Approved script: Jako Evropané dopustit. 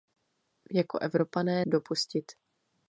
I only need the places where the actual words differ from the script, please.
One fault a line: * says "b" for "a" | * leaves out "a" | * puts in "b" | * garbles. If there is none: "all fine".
all fine